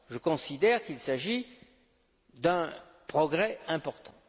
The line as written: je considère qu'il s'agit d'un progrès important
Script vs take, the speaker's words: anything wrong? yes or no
no